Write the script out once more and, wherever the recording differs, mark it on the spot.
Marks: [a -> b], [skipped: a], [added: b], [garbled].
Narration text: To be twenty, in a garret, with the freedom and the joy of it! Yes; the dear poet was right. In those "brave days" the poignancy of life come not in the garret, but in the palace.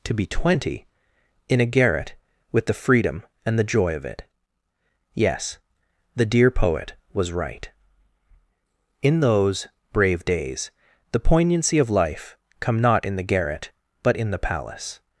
To be twenty, in a garret, with the freedom and the joy of it! Yes; the dear poet was right. In those "brave days" the poignancy of life come not in the garret, but in the palace.